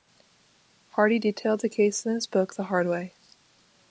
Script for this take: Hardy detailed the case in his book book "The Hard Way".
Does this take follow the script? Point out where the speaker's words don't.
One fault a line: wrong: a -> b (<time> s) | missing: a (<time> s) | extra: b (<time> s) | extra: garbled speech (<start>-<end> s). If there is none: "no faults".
missing: book (2.5 s)